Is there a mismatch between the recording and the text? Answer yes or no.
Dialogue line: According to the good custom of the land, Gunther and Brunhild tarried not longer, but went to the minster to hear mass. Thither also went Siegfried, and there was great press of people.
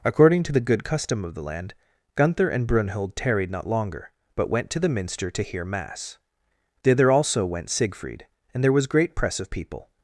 no